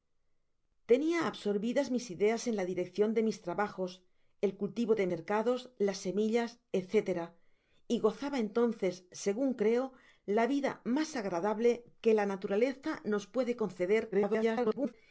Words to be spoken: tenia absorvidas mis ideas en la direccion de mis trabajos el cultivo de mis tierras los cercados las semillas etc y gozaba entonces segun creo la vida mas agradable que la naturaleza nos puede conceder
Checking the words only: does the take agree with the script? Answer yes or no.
no